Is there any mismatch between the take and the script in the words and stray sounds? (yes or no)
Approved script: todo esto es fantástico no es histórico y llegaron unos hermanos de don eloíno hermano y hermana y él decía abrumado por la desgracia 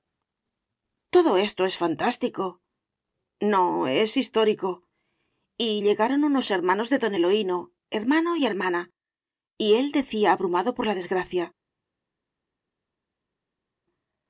no